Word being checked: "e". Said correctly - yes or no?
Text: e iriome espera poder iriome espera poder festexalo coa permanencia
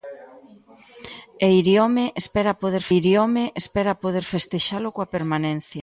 yes